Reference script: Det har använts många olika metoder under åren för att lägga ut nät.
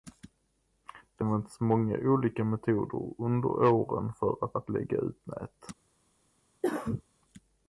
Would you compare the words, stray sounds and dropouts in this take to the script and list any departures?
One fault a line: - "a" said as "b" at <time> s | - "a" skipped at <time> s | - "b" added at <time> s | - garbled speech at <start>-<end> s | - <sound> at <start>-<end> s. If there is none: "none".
- "har" skipped at 1.2 s
- "att" added at 4.6 s
- cough at 6.6-7.0 s